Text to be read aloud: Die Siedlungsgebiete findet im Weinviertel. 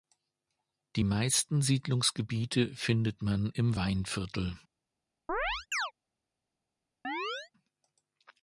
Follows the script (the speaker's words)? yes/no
no